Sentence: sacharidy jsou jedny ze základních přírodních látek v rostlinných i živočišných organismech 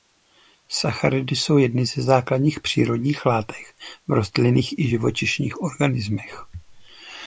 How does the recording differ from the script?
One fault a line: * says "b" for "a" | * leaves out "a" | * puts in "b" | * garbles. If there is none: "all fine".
all fine